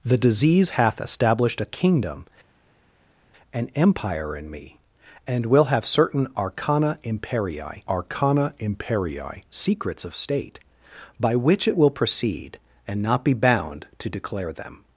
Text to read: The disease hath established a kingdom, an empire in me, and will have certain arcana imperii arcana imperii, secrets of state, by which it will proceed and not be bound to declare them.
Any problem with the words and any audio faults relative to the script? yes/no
no